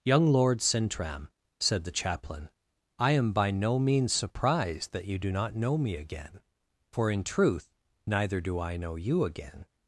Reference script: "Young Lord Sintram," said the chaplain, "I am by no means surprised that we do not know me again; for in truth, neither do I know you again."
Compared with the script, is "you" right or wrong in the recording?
right